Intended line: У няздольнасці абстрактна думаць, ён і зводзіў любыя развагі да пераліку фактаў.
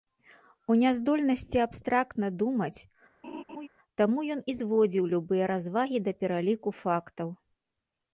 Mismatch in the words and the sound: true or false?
true